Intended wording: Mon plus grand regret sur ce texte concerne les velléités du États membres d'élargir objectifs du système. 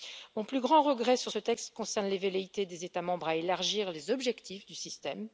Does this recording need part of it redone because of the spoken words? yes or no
yes